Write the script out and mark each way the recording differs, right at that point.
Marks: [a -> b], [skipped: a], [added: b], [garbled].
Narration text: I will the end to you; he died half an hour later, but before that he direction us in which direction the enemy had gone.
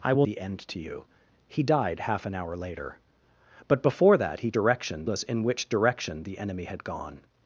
I will the end to you; he died half an hour later, but before that he direction us in which direction the enemy had gone.